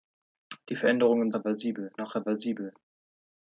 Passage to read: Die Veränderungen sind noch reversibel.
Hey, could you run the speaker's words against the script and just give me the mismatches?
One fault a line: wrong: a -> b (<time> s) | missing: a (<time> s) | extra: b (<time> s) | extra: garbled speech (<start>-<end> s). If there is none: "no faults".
wrong: sind -> reversibel (1.3 s)